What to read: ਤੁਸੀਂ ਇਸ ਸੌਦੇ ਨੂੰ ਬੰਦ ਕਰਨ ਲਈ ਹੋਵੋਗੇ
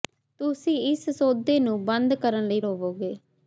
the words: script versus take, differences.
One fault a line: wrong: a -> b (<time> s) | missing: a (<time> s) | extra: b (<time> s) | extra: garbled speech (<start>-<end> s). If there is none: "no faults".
no faults